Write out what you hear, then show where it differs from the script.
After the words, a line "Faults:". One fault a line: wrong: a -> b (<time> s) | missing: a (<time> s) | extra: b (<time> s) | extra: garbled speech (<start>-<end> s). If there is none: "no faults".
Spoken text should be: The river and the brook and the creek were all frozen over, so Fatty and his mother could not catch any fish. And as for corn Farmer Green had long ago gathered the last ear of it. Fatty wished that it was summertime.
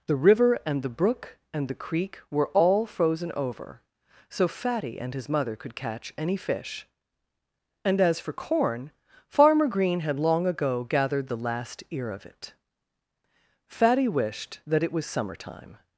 The river and the brook and the creek were all frozen over, so Fatty and his mother could catch any fish. And as for corn Farmer Green had long ago gathered the last ear of it. Fatty wished that it was summertime.
Faults:
missing: not (5.8 s)